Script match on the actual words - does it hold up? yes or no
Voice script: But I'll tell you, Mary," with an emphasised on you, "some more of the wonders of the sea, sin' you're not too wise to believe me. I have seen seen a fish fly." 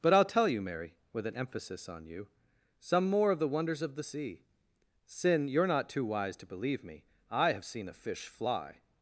no